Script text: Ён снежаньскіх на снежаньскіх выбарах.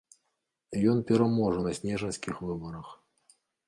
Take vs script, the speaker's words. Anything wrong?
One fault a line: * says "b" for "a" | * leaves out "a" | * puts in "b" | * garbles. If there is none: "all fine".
* says "пераможа" for "снежаньскіх"